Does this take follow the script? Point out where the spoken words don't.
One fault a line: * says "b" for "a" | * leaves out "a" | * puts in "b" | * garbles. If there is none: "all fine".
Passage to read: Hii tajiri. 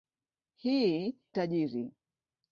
all fine